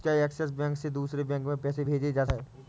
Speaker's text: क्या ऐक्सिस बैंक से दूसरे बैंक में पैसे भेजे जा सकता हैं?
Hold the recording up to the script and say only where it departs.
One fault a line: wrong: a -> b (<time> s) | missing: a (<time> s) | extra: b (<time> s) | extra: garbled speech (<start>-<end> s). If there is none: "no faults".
missing: सकता (2.2 s)